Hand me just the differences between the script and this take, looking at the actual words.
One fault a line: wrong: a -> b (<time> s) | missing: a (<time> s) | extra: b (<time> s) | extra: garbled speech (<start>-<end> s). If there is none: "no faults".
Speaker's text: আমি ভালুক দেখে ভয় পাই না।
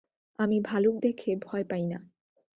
no faults